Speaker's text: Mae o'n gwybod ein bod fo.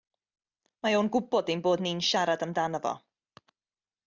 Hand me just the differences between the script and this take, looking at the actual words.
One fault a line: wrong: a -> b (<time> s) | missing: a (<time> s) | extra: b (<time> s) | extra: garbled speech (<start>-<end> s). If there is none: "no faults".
extra: ni'n siarad amdano (1.9 s)